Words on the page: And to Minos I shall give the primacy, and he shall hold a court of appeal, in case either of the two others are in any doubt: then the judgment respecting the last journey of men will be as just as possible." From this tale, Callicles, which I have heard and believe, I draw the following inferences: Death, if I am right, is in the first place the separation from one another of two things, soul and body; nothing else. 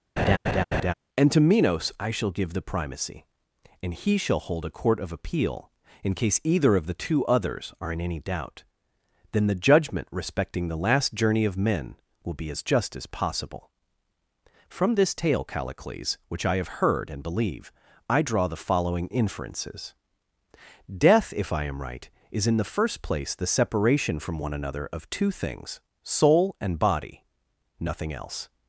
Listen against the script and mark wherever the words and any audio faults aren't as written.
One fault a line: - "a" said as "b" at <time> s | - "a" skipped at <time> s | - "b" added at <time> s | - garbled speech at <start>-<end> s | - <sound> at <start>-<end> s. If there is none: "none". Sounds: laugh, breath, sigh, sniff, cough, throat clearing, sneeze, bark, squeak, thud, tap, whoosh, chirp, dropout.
- laugh at 0.2-0.9 s